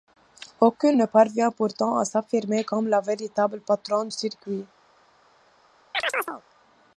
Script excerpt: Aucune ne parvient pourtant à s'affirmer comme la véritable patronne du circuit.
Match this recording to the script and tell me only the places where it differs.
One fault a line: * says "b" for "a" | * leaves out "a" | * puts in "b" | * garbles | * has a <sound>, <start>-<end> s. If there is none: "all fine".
* leaves out "du"
* has a chirp, 5.9-6.4 s